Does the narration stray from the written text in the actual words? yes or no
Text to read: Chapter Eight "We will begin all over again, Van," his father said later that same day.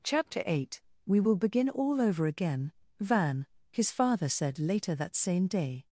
no